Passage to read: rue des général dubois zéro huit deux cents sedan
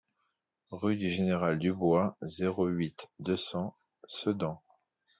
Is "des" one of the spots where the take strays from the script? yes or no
yes